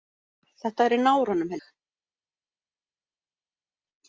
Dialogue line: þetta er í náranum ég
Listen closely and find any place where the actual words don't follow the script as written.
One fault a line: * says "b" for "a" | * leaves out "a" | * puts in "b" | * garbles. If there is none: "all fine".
all fine